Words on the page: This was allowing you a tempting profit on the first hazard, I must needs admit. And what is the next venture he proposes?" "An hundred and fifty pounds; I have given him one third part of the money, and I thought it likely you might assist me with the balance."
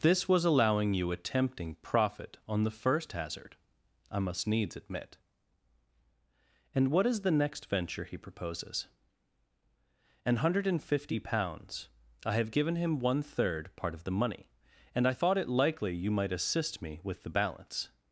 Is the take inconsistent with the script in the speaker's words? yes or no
no